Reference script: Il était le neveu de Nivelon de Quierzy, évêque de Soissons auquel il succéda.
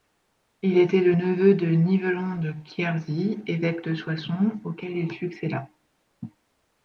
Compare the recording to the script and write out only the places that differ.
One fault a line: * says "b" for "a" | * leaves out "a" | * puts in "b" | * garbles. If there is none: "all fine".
all fine